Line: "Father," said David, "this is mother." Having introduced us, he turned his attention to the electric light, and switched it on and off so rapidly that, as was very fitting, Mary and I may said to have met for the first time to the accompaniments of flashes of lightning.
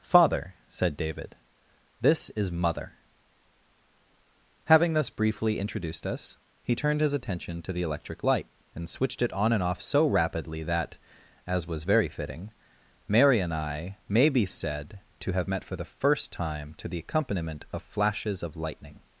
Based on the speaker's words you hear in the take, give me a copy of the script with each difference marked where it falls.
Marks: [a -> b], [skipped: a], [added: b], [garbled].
"Father," said David, "this is mother." Having [added: thus briefly] introduced us, he turned his attention to the electric light, and switched it on and off so rapidly that, as was very fitting, Mary and I may [added: be] said to have met for the first time to the [accompaniments -> accompaniment] of flashes of lightning.